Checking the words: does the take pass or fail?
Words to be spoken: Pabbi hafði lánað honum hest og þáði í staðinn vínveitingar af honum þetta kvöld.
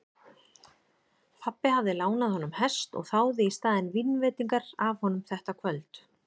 pass